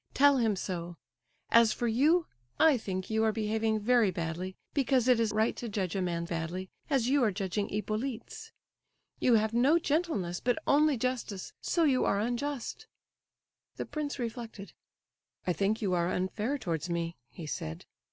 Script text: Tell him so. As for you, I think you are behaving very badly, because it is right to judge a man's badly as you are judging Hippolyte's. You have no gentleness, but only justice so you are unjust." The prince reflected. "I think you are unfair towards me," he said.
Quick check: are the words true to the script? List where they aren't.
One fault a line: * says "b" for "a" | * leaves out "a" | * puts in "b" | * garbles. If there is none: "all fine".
all fine